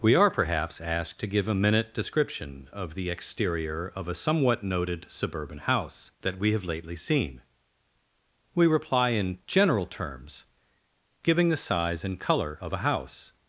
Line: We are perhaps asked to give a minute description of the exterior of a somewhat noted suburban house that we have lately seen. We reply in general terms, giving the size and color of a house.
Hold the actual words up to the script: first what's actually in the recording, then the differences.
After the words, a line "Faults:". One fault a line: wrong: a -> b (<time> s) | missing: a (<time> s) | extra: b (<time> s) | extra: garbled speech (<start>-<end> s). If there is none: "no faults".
We are perhaps asked to give a minute description of the exterior of a somewhat noted suburban house that we have lately seen. We reply in general terms, giving the size and color of a house.
Faults:
no faults